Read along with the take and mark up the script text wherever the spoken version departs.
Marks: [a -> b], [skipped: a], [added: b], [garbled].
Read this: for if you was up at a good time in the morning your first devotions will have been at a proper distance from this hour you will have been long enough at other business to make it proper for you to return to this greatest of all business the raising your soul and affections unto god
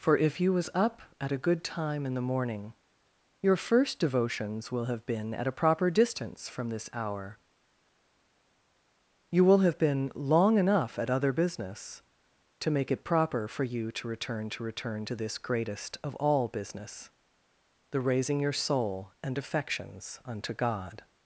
for if you was up at a good time in the morning your first devotions will have been at a proper distance from this hour you will have been long enough at other business to make it proper for you to return to [added: return to] this greatest of all business the raising your soul and affections unto god